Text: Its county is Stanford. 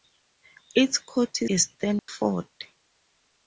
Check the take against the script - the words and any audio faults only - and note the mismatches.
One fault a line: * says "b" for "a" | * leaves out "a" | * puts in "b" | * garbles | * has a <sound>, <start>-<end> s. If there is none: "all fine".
* has a dropout, 2.0-2.1 s